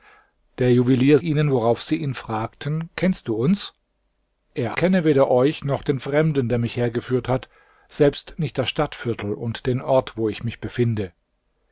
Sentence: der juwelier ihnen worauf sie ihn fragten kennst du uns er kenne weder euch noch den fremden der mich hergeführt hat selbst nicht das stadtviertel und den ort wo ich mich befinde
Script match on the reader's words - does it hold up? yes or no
yes